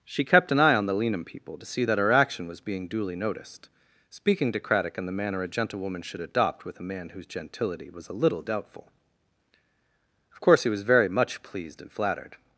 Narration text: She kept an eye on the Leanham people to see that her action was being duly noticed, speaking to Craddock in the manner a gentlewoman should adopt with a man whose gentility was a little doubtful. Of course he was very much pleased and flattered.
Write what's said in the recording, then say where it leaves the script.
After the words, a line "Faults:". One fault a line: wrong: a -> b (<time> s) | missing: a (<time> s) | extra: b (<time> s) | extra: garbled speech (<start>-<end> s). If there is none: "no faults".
She kept an eye on the Leanham people to see that her action was being duly noticed, speaking to Craddock in the manner a gentlewoman should adopt with a man whose gentility was a little doubtful. Of course he was very much pleased and flattered.
Faults:
no faults